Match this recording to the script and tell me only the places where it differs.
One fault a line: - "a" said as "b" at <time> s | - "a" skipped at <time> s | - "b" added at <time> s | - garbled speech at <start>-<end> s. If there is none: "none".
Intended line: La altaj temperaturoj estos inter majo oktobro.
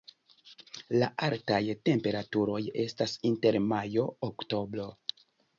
- "estos" said as "estas" at 2.9 s